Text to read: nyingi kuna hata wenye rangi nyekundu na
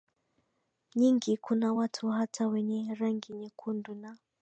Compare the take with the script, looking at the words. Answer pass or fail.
fail